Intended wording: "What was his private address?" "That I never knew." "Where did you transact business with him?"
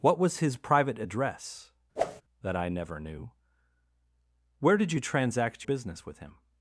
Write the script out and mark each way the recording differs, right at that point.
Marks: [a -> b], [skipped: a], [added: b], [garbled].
"What was his private address?" "That I never knew." "Where did you transact business with him?"